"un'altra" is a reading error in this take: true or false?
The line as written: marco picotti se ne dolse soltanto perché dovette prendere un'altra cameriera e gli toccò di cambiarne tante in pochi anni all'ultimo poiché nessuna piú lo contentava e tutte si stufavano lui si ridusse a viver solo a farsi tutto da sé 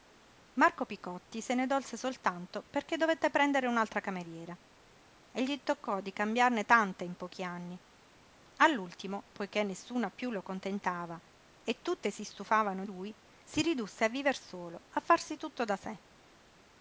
false